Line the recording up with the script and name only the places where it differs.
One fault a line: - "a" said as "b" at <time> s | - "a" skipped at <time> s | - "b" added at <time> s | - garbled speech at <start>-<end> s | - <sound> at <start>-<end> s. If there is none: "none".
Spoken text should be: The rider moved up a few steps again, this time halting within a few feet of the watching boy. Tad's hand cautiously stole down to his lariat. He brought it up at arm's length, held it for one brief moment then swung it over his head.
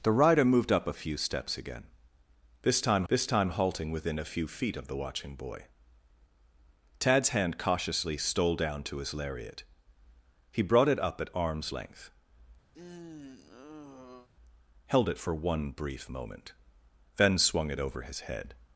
- "this time" added at 3.1 s
- sigh at 12.7-14.3 s